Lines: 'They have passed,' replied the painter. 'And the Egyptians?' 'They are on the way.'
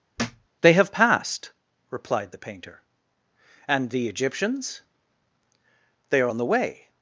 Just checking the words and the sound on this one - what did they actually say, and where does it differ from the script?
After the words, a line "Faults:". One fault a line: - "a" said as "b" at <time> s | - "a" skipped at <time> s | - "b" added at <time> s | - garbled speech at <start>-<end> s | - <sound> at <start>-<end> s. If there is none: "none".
'They have passed,' replied the painter. 'And the Egyptians?' 'They are on the way.'
Faults:
- thud at 0.2-0.5 s